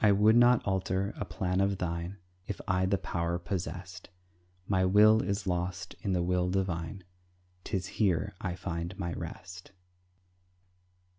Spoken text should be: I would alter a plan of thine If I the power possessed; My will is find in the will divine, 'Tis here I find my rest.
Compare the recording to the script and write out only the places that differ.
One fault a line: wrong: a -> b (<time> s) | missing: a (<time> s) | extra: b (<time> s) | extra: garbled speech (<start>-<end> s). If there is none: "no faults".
extra: not (0.3 s)
wrong: find -> lost (5.5 s)